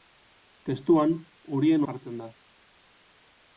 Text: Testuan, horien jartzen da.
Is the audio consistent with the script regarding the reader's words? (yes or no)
yes